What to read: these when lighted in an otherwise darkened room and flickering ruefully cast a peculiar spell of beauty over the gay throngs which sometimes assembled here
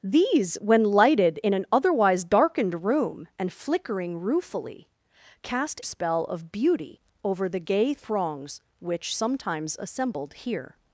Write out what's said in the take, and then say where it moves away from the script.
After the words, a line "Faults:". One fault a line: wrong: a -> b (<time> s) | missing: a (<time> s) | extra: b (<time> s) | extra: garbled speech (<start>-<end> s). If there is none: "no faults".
these when lighted in an otherwise darkened room and flickering ruefully cast spell of beauty over the gay throngs which sometimes assembled here
Faults:
missing: a peculiar (5.8 s)